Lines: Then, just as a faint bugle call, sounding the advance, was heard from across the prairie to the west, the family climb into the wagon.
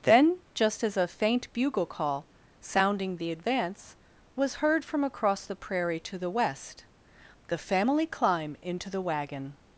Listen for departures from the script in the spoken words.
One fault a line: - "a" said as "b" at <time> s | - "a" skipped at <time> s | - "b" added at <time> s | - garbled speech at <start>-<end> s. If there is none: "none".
none